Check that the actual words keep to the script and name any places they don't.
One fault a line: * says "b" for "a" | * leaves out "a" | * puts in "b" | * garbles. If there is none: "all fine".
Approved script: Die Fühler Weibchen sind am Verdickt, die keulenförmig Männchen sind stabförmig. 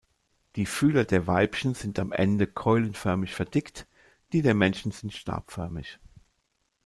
* puts in "der"
* puts in "Ende keulenförmig"
* says "der" for "keulenförmig"